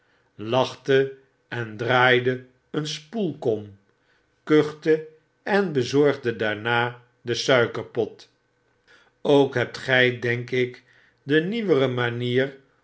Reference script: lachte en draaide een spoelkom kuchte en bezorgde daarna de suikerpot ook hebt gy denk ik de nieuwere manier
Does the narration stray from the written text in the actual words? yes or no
no